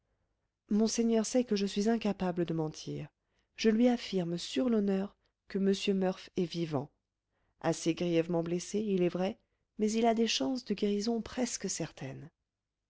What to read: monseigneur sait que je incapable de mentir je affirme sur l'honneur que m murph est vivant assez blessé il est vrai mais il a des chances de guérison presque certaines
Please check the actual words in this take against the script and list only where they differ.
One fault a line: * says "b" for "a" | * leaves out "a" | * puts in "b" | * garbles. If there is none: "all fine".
* puts in "suis"
* puts in "lui"
* puts in "grièvement"